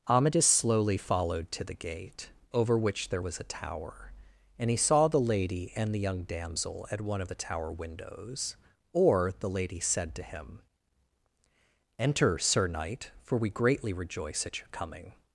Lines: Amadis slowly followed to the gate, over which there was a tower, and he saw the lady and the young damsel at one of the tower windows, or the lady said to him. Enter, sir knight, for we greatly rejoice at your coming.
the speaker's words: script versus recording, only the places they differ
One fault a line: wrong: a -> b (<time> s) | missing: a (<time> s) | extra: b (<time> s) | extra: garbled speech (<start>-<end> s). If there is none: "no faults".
no faults